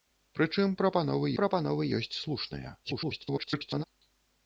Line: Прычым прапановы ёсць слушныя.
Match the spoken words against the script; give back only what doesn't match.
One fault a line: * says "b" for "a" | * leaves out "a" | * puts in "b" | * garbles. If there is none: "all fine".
* puts in "прапановы"
* garbles